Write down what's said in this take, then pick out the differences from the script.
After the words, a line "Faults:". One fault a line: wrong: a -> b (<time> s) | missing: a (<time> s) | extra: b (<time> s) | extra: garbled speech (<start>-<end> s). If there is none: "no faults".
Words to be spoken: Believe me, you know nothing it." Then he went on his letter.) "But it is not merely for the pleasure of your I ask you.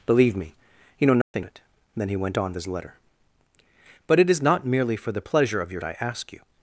Believe me, you know nothing it." Then he went on his letter.) "But it is not merely for the pleasure of your I ask you.
Faults:
no faults